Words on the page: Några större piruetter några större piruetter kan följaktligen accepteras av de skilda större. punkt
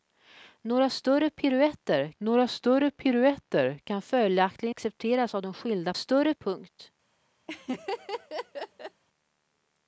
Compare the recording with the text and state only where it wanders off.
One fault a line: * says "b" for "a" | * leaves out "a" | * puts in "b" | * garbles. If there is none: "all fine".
all fine